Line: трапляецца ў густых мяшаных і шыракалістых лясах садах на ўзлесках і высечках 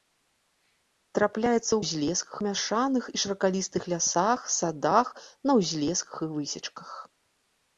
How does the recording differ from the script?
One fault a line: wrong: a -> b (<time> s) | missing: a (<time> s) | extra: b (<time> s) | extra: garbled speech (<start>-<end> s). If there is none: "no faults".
wrong: густых -> ўзлесках (1.8 s)